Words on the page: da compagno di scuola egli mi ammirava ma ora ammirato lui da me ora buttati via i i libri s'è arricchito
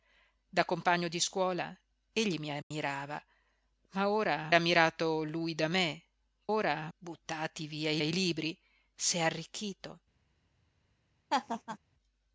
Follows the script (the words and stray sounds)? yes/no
no